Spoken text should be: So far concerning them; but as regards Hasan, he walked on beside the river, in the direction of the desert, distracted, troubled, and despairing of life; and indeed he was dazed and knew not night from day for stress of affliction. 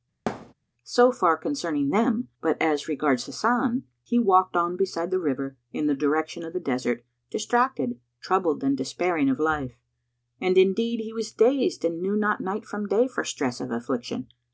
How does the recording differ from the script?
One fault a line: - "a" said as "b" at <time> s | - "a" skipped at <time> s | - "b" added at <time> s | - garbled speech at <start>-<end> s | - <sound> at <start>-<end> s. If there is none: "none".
- thud at 0.3-0.5 s